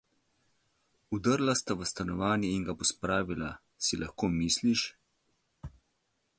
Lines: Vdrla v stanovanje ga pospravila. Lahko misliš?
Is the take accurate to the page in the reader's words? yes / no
no